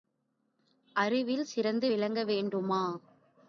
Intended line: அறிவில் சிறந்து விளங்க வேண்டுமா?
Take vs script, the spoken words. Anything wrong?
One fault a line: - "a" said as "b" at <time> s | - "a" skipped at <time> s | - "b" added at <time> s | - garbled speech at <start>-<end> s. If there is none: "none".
none